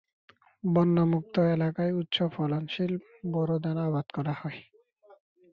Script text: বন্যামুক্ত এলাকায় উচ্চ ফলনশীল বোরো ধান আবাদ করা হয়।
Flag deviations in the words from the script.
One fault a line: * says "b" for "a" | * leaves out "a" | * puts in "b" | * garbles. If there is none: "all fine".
all fine